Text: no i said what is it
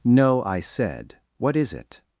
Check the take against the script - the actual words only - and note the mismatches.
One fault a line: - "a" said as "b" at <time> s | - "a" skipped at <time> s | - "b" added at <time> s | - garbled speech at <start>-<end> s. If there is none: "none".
none